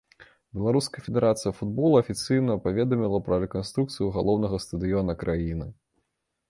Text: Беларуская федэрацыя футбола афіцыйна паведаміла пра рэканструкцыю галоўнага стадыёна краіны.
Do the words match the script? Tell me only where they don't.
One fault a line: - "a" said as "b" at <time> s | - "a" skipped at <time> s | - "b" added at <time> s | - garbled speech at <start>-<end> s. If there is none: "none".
none